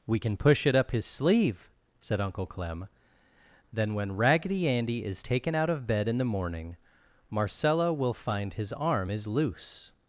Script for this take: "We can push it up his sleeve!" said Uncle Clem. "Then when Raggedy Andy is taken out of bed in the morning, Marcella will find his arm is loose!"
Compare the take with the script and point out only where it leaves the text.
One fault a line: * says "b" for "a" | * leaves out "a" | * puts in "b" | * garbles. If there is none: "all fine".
all fine